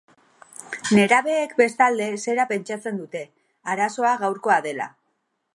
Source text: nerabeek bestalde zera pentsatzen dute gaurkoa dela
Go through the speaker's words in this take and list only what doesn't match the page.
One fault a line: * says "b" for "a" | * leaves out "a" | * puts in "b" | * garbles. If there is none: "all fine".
* puts in "arazoa"